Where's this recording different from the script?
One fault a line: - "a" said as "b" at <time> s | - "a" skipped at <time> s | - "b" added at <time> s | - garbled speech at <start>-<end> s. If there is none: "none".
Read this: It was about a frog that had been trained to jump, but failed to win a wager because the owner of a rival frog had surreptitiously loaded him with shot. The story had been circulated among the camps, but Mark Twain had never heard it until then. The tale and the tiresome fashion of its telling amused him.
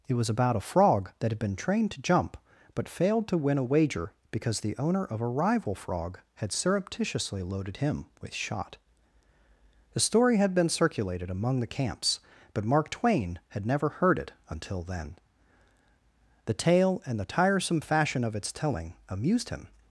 none